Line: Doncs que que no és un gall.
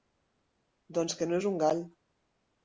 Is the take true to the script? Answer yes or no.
no